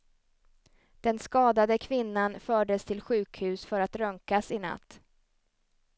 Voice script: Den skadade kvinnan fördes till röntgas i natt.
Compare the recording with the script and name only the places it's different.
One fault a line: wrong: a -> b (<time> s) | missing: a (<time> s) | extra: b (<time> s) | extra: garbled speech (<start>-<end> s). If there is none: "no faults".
extra: sjukhus för att (3.0 s)